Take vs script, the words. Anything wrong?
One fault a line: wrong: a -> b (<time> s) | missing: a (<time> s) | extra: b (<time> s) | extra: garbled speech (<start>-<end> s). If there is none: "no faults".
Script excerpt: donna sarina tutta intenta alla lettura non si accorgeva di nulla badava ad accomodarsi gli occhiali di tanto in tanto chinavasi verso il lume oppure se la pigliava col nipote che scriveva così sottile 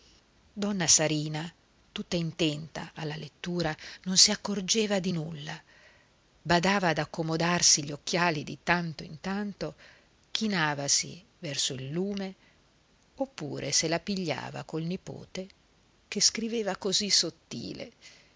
no faults